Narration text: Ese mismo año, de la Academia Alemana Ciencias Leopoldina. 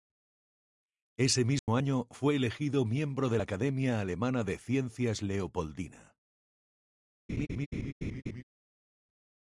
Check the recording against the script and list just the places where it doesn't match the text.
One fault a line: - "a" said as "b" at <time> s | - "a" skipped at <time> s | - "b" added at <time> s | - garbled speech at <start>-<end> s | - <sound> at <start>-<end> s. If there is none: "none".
- dropout at 1.6-1.7 s
- "fue elegido miembro" added at 2.1 s
- "de" added at 4.4 s
- laugh at 7.3-8.4 s